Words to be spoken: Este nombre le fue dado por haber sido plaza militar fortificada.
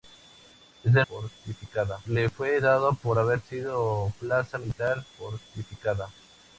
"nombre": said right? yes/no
no